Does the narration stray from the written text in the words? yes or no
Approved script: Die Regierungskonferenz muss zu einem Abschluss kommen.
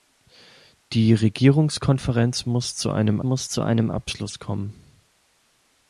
yes